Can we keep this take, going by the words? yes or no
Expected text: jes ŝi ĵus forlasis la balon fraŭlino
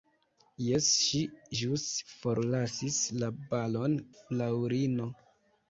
yes